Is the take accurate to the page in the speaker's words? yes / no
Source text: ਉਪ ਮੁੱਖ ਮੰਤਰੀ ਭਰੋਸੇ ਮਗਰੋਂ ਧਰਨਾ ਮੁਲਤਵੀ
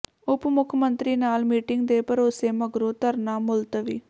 no